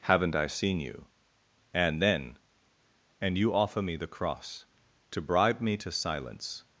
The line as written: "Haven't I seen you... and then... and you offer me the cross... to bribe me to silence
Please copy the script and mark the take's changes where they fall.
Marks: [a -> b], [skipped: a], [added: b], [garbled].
"Haven't I seen you... and then... and you offer me the cross... to bribe me to silence